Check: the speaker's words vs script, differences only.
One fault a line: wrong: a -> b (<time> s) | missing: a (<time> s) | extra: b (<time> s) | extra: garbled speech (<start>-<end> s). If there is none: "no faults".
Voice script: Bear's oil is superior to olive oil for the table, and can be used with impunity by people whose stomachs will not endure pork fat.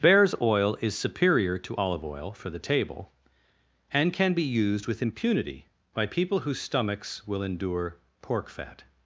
missing: not (7.4 s)